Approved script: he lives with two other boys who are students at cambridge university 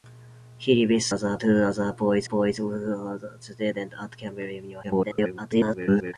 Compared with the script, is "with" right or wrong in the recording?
wrong